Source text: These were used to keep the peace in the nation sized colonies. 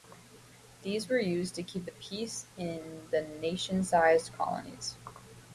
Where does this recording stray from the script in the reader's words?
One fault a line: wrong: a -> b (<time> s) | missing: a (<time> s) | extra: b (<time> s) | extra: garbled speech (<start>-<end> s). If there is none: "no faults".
no faults